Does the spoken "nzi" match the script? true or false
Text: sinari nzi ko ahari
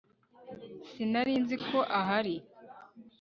true